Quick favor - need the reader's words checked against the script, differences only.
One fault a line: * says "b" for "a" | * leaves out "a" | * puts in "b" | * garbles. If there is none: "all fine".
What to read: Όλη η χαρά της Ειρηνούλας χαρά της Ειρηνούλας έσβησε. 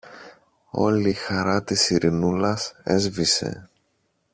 * leaves out "χαρά της Ειρηνούλας"